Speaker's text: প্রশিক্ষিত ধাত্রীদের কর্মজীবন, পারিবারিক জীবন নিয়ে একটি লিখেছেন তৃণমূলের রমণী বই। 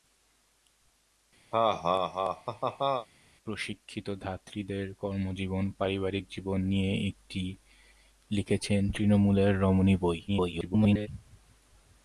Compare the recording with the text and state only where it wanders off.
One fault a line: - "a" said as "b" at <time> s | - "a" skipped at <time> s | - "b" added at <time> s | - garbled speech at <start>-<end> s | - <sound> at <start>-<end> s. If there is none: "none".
- laugh at 1.5-3.1 s
- garbled speech at 10.3-11.1 s